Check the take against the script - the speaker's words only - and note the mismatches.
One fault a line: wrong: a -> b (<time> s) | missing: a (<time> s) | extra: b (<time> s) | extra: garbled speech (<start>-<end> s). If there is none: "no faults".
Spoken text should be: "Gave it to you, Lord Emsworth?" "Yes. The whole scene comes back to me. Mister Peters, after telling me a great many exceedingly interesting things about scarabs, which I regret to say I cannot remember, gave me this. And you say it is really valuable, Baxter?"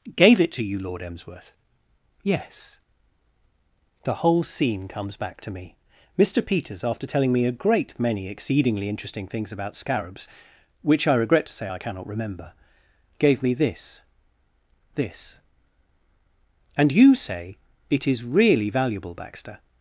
extra: this (15.0 s)